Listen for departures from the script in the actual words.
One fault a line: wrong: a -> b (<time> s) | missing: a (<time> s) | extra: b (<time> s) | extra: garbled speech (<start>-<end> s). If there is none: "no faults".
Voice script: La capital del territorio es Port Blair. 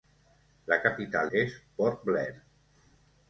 missing: del territorio (1.3 s)